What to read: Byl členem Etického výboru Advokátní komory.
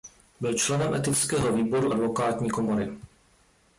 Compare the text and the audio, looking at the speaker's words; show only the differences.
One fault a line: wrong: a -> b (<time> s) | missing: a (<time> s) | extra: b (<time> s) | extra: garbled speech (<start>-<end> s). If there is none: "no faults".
no faults